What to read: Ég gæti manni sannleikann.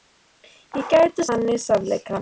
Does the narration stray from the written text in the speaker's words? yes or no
no